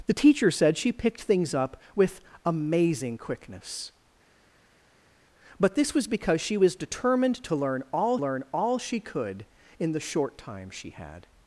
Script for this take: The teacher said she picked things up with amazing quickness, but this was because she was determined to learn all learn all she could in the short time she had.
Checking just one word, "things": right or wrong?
right